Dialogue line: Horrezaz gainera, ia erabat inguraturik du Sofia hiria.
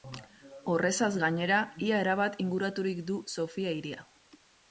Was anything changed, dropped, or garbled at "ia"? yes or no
no